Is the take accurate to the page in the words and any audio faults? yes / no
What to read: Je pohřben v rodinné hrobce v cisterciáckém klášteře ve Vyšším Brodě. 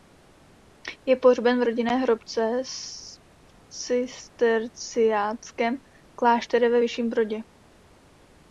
yes